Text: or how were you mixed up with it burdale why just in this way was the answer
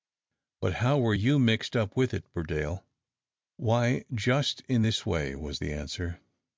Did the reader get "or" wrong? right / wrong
wrong